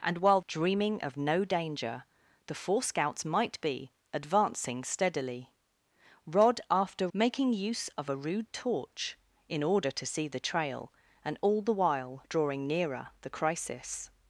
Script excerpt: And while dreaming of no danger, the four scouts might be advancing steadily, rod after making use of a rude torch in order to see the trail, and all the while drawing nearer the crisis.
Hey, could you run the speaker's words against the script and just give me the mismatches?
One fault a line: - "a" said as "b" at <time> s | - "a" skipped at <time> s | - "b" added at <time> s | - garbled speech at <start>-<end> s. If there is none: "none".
none